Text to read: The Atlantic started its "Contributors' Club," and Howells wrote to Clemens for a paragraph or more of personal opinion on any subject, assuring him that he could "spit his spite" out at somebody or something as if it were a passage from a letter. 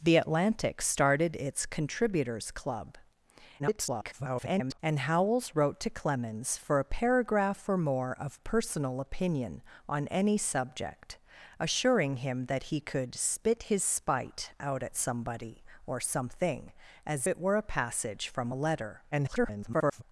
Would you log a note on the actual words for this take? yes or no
yes